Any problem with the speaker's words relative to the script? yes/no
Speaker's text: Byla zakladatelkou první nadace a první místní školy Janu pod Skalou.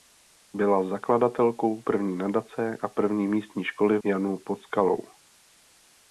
no